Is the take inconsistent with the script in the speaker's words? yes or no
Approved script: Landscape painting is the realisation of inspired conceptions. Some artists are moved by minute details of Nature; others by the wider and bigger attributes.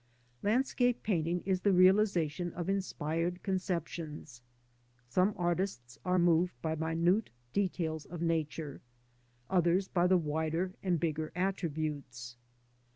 no